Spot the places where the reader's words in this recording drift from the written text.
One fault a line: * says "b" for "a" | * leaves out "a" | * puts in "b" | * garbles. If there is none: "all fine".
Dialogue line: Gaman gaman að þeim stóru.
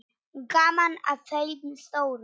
* leaves out "gaman"